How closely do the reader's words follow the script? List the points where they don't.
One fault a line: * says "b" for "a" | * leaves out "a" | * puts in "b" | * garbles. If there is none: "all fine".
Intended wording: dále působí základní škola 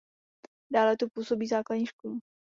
* puts in "tu"